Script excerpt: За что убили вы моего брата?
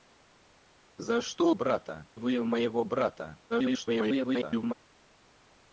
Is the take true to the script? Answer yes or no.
no